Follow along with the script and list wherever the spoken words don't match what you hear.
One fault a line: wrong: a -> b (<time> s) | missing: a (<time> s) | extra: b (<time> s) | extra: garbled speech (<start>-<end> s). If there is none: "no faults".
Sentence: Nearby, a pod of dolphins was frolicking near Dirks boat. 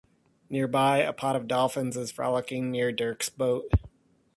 wrong: was -> is (2.0 s)